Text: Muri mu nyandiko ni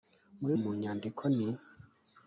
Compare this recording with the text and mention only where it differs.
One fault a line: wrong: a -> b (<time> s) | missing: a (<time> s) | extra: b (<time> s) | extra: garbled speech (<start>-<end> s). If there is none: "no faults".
no faults